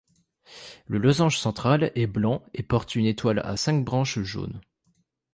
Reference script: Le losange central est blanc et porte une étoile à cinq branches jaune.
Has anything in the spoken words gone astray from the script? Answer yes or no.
no